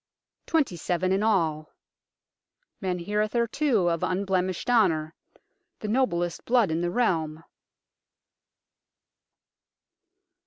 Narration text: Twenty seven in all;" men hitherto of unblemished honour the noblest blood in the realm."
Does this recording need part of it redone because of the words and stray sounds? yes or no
no